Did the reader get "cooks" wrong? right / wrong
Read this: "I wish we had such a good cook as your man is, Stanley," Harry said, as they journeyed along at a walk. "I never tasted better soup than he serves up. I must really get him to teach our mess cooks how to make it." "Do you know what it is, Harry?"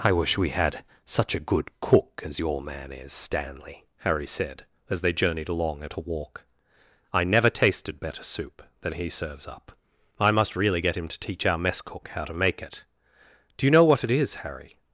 wrong